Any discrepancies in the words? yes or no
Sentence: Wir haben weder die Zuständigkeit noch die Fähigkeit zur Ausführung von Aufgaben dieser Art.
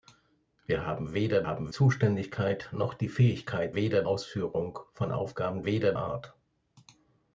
yes